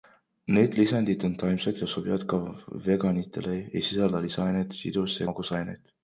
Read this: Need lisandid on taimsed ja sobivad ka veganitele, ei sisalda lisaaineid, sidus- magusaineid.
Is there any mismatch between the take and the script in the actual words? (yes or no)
no